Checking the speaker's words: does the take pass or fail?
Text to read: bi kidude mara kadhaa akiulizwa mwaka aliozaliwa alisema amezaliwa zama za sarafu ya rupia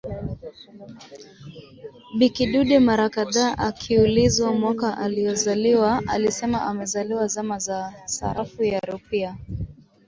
pass